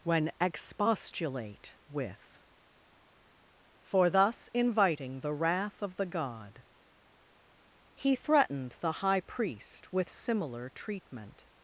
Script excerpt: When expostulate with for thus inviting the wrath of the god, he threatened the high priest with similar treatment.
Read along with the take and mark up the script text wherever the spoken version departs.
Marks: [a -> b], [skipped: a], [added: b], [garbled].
When expostulate with for thus inviting the wrath of the god, he threatened the high priest with similar treatment.